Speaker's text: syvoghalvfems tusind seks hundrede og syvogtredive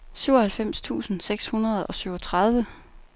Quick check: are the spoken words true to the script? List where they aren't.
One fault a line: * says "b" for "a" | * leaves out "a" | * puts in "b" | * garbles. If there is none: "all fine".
all fine